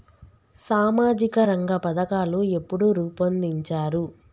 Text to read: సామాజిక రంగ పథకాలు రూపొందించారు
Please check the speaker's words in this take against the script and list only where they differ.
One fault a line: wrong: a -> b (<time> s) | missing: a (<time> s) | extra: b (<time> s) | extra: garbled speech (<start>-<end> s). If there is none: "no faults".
extra: ఎప్పుడు (2.5 s)